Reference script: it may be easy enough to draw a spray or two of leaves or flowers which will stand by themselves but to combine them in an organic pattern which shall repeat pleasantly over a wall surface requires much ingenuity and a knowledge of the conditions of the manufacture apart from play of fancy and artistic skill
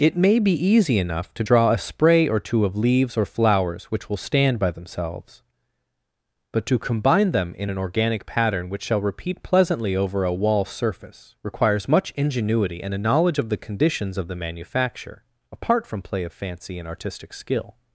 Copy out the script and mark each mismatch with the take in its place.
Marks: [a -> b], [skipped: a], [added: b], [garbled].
it may be easy enough to draw a spray or two of leaves or flowers which will stand by themselves but to combine them in an organic pattern which shall repeat pleasantly over a wall surface requires much ingenuity and a knowledge of the conditions of the manufacture apart from play of fancy and artistic skill